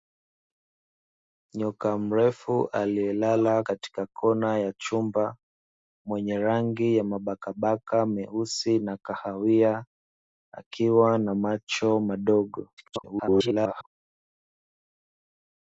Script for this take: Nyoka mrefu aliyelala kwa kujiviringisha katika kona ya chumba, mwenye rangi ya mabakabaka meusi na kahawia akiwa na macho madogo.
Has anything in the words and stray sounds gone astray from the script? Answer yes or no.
yes